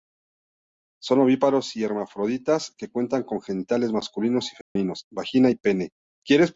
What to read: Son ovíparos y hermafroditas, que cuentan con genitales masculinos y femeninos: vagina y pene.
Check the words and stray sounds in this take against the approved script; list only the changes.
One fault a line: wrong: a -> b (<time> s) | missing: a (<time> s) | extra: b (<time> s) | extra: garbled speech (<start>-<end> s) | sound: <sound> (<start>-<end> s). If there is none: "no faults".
sound: dropout (4.6-4.8 s)